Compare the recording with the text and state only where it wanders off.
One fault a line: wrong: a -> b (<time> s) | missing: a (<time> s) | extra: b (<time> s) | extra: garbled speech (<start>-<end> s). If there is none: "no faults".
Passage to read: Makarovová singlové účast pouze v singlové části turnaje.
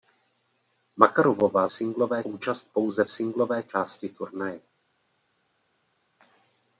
no faults